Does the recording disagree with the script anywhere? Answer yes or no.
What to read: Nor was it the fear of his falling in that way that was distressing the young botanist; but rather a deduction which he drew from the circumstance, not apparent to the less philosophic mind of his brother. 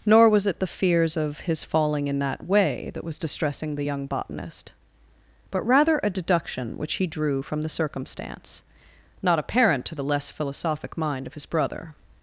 yes